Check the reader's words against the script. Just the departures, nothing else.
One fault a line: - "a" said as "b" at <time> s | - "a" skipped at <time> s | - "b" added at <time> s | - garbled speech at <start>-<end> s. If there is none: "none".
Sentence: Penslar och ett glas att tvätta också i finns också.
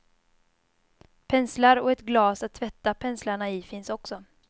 - "också" said as "penslarna" at 2.9 s